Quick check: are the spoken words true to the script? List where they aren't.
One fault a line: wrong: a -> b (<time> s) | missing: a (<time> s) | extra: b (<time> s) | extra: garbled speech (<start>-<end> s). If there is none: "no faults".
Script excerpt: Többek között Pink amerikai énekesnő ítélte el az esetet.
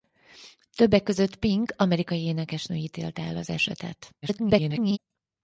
extra: garbled speech (4.2-5.0 s)